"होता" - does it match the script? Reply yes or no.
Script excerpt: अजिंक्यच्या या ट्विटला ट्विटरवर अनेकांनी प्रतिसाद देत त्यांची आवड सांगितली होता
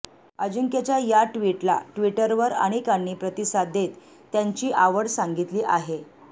no